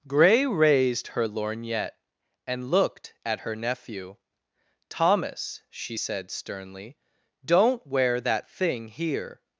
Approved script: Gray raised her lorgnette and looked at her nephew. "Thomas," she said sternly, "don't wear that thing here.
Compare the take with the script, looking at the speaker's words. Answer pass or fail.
pass